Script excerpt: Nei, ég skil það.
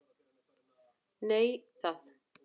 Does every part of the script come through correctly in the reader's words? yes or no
no